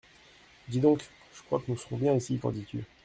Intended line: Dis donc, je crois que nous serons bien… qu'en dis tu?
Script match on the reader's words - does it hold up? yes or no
no